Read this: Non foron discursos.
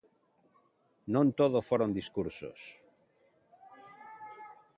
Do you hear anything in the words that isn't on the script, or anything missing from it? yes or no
yes